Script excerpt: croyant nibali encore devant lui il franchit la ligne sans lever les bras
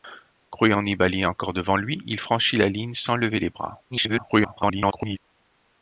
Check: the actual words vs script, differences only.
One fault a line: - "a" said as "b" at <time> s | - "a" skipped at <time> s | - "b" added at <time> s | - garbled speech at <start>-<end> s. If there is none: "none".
- garbled speech at 3.9-5.2 s